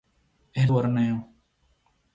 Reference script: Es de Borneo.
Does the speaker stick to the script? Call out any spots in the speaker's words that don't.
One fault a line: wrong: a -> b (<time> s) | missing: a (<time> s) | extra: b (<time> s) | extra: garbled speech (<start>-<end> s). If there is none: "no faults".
no faults